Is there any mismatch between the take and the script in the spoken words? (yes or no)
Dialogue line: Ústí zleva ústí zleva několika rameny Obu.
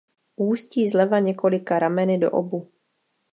yes